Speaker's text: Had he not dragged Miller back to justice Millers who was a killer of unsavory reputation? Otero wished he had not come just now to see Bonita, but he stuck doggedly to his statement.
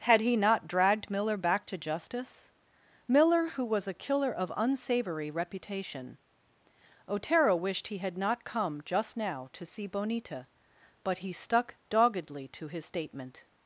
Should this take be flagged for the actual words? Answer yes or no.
yes